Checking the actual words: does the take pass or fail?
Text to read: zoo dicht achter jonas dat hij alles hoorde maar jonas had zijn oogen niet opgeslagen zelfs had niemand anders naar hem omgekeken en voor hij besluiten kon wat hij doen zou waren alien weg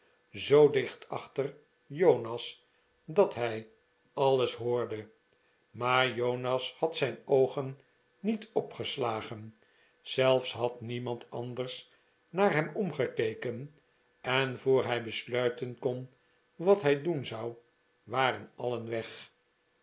pass